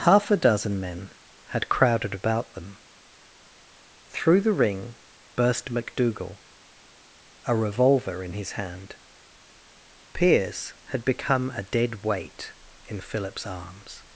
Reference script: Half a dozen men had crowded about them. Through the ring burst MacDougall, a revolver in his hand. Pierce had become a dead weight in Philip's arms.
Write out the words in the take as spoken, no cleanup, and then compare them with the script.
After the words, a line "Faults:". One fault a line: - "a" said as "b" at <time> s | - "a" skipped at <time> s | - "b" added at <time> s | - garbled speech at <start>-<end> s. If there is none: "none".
Half a dozen men had crowded about them. Through the ring burst MacDougall, a revolver in his hand. Pierce had become a dead weight in Philip's arms.
Faults:
none